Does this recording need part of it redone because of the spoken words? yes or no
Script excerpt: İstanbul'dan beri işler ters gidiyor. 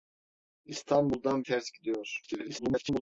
yes